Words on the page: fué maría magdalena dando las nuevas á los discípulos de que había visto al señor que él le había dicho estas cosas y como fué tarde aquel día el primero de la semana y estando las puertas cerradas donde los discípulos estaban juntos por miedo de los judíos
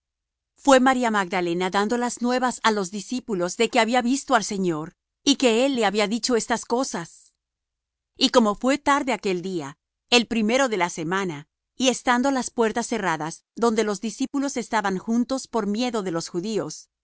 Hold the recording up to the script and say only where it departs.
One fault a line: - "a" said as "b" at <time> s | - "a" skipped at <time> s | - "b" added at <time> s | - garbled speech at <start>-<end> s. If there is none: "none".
- "y" added at 5.2 s